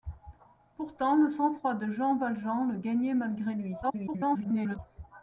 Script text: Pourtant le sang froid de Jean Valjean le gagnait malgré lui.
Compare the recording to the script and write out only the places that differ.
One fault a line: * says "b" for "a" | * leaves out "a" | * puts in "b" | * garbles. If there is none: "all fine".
* garbles